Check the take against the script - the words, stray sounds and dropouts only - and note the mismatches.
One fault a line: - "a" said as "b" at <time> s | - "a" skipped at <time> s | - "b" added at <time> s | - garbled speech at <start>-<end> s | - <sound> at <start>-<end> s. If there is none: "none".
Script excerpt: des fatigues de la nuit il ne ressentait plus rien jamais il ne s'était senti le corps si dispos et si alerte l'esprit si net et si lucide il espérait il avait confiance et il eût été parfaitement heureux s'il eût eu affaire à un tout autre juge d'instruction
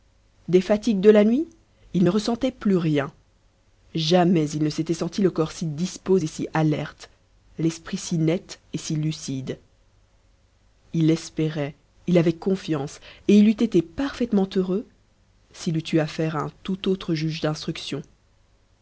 none